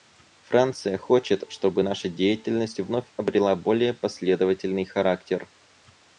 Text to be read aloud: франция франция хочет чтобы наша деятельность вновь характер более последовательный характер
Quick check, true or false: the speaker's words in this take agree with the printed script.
false